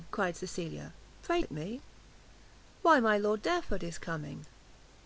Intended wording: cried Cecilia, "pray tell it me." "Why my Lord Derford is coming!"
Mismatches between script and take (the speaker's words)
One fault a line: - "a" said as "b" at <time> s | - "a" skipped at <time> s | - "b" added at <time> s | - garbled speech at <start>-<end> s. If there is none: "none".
- "tell" skipped at 1.4 s